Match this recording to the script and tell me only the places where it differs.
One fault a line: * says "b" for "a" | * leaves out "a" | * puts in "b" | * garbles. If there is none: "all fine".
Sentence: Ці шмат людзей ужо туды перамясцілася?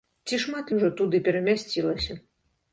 * leaves out "людзей"